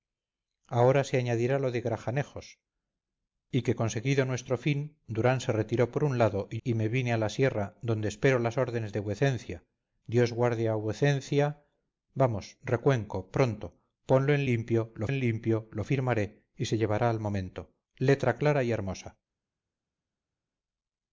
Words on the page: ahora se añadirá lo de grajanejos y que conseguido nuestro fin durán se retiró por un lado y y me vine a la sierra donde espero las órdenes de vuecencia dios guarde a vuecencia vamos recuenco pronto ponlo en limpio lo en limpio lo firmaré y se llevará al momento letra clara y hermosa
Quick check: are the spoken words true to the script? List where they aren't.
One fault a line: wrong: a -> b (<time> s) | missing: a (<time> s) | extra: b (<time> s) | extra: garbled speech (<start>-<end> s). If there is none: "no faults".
no faults